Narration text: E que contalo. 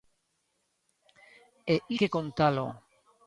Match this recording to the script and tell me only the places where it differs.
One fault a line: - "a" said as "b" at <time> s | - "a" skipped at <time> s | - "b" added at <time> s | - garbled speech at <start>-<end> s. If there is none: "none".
none